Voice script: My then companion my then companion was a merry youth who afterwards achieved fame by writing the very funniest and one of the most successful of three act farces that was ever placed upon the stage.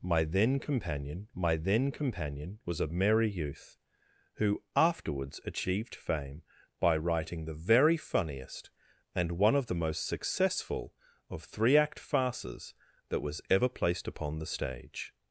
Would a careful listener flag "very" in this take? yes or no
no